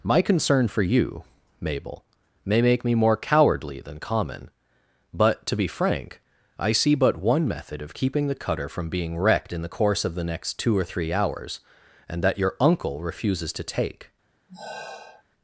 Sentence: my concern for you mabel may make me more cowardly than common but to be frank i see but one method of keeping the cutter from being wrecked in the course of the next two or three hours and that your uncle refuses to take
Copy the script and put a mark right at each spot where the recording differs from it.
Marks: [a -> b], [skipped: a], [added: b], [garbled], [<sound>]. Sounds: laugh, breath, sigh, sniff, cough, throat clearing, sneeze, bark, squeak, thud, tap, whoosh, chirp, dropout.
my concern for you mabel may make me more cowardly than common but to be frank i see but one method of keeping the cutter from being wrecked in the course of the next two or three hours and that your uncle refuses to take [sigh]